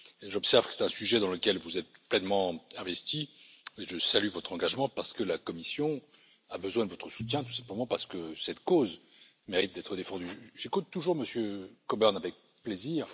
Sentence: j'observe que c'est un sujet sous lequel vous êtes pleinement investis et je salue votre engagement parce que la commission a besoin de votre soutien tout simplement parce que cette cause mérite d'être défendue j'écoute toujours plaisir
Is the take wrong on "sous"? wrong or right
wrong